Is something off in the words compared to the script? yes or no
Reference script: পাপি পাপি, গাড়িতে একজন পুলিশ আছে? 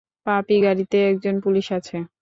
yes